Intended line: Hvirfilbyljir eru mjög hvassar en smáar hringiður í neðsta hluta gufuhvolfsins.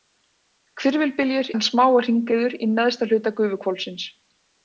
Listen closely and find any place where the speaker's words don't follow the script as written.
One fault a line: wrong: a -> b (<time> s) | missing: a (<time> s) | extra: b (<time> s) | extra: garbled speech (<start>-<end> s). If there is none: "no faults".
missing: eru mjög hvassar (1.5 s)